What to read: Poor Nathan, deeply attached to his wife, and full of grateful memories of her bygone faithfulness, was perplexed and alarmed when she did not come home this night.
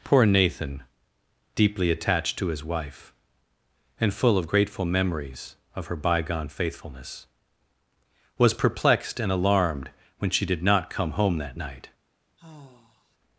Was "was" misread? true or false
false